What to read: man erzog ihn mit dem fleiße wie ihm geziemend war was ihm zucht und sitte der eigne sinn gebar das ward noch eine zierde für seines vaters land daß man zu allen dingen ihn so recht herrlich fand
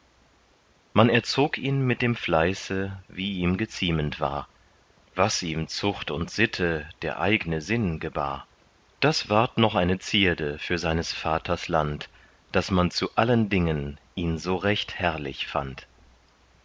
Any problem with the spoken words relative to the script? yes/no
no